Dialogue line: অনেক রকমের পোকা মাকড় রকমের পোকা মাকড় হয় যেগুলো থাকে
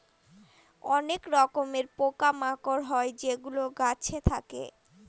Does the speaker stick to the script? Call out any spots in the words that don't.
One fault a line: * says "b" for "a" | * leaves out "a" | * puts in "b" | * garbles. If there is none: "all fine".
* leaves out "রকমের পোকা মাকড়"
* puts in "গাছে"